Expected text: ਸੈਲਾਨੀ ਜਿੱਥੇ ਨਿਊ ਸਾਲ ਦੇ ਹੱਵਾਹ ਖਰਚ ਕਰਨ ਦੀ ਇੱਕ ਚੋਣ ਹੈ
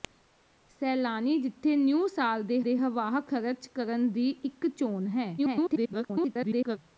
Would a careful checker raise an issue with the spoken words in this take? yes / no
yes